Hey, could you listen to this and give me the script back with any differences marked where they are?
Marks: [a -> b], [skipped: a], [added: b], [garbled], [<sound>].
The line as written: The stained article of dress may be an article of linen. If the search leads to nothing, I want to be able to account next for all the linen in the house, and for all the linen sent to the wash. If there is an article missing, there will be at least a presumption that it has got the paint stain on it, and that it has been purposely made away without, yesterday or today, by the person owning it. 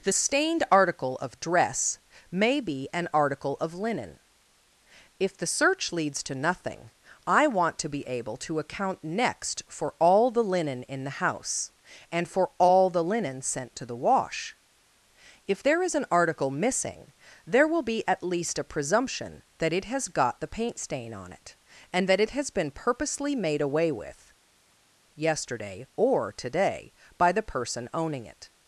The stained article of dress may be an article of linen. If the search leads to nothing, I want to be able to account next for all the linen in the house, and for all the linen sent to the wash. If there is an article missing, there will be at least a presumption that it has got the paint stain on it, and that it has been purposely made away [without, -> with] yesterday or today, by the person owning it.